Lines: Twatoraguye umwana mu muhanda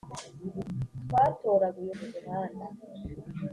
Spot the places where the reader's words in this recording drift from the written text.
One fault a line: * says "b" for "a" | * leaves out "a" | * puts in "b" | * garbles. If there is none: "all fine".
* leaves out "umwana"